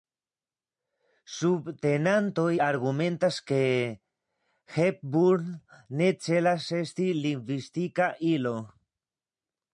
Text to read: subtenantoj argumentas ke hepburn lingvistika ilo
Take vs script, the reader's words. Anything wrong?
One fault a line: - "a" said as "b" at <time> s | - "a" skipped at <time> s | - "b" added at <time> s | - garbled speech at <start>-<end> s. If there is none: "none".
- "ne celas esti" added at 6.0 s